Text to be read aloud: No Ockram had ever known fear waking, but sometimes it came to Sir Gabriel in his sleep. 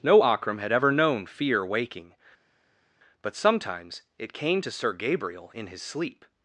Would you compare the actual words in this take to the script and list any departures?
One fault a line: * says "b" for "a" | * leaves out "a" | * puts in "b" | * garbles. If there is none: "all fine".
all fine